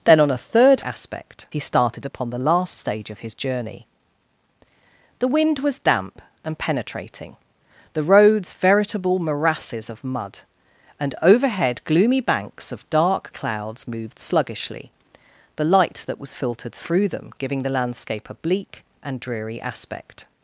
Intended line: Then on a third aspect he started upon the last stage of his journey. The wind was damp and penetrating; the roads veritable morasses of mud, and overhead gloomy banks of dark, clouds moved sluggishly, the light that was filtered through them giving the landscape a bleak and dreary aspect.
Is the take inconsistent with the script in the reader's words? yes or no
no